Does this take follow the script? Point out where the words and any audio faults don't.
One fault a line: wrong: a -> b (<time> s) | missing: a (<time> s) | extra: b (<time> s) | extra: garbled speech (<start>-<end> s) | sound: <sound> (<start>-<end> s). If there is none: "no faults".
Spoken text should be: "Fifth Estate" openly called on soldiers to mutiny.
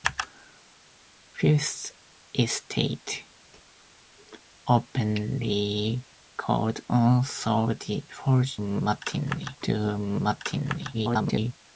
wrong: soldiers -> mutiny (8.6 s)
extra: garbled speech (10.9-11.5 s)